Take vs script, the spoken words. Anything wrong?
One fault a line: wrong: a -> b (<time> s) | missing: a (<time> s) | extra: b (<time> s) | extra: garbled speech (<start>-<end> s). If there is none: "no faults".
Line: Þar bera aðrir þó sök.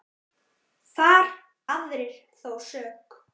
missing: bera (1.3 s)